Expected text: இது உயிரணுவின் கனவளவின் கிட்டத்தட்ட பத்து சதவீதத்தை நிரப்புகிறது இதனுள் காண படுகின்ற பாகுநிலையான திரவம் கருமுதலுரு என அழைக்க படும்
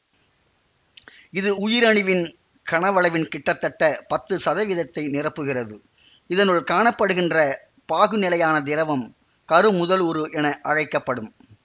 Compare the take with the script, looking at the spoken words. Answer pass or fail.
pass